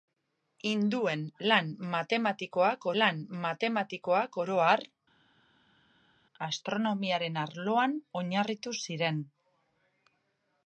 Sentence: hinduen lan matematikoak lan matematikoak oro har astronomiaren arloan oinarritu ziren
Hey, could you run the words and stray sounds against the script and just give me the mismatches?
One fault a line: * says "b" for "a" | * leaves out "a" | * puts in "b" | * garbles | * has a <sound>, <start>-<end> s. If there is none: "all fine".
all fine